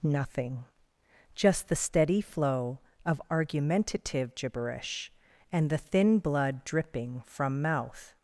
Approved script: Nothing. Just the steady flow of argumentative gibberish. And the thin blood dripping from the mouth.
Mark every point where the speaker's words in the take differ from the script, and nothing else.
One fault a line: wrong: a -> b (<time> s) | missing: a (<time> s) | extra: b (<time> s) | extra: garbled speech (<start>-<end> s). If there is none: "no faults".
missing: the (7.6 s)